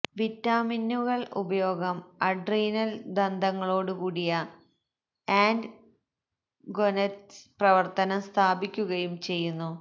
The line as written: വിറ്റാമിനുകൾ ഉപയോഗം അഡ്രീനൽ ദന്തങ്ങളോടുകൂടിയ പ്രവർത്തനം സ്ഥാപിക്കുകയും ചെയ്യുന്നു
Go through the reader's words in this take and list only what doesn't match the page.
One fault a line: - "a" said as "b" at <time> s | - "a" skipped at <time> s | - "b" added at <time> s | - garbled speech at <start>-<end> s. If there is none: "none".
- "ആൻഡ് ഗൊനദ്സ്" added at 5.3 s